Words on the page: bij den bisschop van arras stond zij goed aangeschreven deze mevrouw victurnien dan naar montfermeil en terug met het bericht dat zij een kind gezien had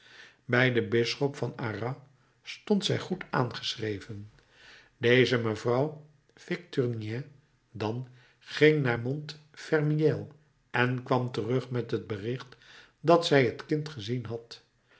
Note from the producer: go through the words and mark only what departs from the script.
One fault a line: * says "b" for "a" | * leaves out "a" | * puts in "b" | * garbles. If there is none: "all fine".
* puts in "ging"
* puts in "kwam"
* says "het" for "een"